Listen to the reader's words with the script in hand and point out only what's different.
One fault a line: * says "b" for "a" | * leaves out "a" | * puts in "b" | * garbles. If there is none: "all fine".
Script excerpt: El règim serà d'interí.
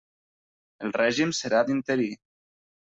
all fine